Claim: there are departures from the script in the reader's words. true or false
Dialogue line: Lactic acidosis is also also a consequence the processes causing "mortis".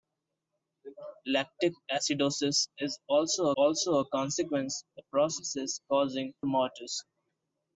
false